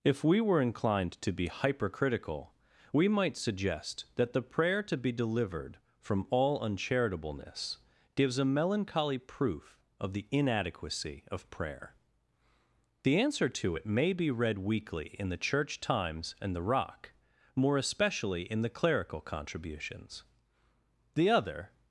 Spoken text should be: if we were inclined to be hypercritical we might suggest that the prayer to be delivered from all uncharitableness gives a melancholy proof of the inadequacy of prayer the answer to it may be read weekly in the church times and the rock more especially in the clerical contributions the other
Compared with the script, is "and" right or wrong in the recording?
right